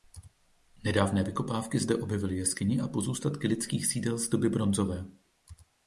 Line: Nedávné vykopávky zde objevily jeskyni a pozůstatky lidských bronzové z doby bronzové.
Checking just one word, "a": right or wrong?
right